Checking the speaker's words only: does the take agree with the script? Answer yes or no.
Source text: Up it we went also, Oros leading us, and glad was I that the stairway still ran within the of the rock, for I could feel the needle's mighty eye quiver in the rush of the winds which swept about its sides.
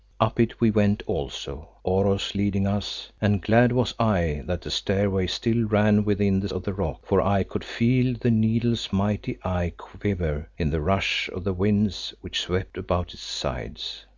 yes